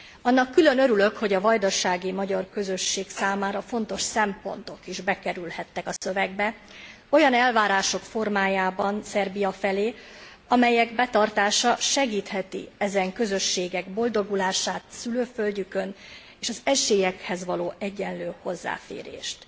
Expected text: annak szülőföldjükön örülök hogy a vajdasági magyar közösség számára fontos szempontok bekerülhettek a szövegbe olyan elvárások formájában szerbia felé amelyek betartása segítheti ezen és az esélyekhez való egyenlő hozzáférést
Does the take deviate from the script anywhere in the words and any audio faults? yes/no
yes